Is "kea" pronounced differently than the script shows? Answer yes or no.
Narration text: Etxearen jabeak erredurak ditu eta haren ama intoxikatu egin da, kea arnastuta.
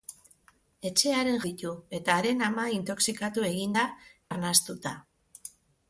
yes